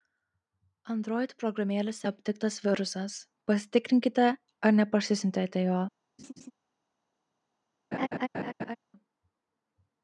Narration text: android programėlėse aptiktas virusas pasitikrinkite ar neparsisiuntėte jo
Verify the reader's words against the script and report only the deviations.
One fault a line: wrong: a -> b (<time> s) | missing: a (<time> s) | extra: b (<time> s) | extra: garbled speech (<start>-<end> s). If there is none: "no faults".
no faults